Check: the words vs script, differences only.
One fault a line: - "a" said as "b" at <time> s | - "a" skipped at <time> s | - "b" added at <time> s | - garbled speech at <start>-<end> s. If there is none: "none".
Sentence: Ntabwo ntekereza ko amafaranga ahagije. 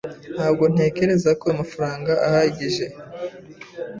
none